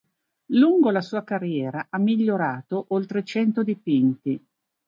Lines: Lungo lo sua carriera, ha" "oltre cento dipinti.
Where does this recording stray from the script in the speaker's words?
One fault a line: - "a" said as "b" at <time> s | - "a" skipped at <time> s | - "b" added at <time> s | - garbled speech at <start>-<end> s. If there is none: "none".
- "lo" said as "la" at 0.9 s
- "migliorato" added at 2.0 s